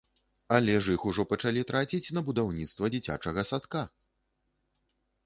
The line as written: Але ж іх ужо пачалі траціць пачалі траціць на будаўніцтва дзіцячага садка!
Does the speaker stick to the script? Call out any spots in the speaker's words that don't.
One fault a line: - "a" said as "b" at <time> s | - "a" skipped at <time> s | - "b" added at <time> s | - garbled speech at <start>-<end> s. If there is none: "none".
- "пачалі траціць" skipped at 2.1 s